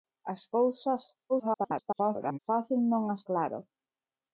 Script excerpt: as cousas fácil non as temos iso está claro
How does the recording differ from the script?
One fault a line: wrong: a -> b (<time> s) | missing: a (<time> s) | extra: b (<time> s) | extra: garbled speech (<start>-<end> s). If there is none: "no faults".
extra: garbled speech (1.3-2.4 s)
missing: temos iso está (3.2 s)